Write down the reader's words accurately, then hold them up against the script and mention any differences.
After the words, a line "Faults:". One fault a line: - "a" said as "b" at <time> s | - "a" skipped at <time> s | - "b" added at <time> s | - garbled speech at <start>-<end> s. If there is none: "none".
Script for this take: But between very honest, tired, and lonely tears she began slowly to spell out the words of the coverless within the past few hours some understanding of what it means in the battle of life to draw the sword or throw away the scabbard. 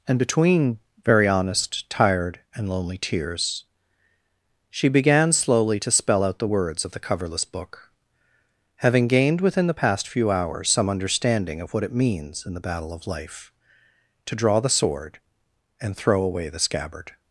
And between very honest, tired, and lonely tears she began slowly to spell out the words of the coverless book, having gained within the past few hours some understanding of what it means in the battle of life to draw the sword and throw away the scabbard.
Faults:
- "But" said as "And" at 0.1 s
- "book having gained" added at 7.4 s
- "or" said as "and" at 15.8 s